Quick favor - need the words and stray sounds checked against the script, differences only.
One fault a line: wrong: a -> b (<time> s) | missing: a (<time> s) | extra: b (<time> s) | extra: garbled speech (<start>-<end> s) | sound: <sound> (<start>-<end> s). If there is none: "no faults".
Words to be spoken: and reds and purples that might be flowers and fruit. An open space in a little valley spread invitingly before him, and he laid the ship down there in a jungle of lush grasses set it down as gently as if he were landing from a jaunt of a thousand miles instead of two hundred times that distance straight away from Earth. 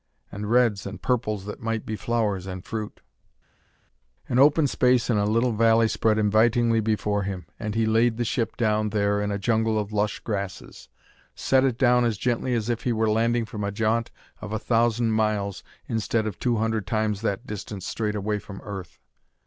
no faults